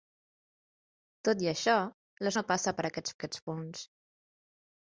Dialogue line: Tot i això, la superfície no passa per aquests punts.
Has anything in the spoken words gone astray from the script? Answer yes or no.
yes